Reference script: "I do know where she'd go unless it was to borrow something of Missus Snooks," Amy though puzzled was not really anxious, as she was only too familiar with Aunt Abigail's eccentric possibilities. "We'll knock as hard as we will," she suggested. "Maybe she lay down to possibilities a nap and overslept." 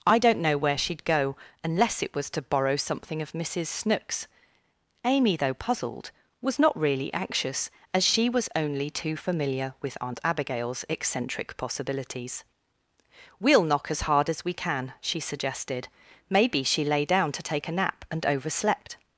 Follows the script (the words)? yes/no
no